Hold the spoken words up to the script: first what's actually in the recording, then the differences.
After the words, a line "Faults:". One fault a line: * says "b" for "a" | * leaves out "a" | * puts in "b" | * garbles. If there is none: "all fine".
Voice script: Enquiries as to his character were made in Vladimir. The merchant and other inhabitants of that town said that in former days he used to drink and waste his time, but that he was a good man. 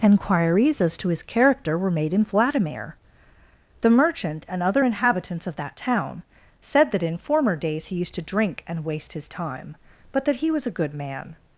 Enquiries as to his character were made in Vladimir. The merchant and other inhabitants of that town said that in former days he used to drink and waste his time, but that he was a good man.
Faults:
all fine